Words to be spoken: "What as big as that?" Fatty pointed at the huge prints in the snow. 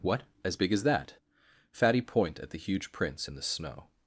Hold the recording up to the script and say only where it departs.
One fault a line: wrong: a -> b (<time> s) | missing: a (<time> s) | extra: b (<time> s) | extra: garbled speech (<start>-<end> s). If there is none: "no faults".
wrong: pointed -> point (2.0 s)